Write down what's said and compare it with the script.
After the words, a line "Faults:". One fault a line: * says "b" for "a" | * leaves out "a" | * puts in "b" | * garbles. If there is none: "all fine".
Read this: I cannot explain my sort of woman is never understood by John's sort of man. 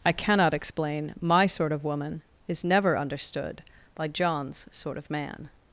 I cannot explain my sort of woman is never understood by John's sort of man.
Faults:
all fine